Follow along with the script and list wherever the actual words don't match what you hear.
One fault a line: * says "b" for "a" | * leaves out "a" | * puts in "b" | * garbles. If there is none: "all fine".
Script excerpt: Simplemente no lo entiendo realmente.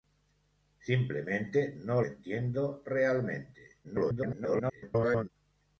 * leaves out "lo"
* garbles